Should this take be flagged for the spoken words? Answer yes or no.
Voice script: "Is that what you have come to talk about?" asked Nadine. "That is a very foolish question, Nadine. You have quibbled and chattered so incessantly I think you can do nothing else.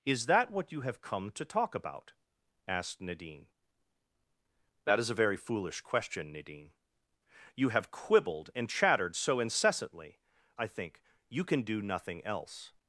no